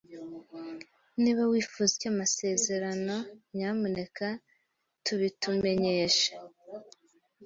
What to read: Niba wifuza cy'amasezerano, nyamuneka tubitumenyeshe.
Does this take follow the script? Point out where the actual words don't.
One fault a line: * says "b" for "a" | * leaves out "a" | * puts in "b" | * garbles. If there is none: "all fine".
all fine